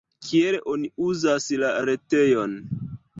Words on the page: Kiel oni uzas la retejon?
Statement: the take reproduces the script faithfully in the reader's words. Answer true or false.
true